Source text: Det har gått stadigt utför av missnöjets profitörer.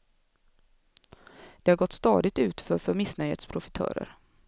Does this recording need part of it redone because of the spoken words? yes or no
yes